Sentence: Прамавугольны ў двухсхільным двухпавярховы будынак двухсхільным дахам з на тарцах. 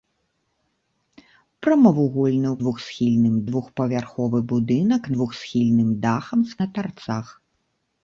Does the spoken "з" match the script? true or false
true